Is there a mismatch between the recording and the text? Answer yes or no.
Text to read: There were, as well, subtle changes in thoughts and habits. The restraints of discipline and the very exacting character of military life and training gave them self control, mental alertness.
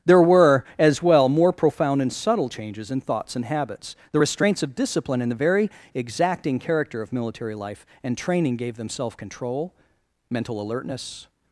yes